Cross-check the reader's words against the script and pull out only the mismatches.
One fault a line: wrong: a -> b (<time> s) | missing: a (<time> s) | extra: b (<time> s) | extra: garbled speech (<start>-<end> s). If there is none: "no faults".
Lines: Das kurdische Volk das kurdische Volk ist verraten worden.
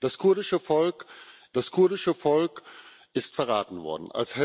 no faults